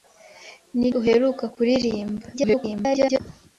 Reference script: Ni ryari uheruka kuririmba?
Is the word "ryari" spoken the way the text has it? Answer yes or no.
no